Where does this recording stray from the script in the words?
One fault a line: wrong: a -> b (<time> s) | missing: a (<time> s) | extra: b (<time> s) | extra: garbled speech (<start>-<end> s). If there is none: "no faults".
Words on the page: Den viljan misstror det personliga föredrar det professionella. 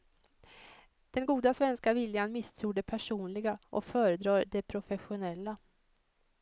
extra: goda svenska (1.2 s)
extra: och (3.7 s)